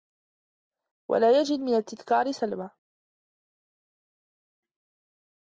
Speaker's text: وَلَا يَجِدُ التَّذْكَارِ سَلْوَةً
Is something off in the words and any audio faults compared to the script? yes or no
yes